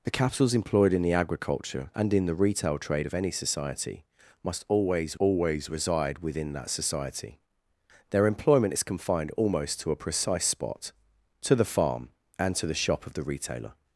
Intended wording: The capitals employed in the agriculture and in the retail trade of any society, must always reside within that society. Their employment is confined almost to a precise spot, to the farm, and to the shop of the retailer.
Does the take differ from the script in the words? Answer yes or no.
yes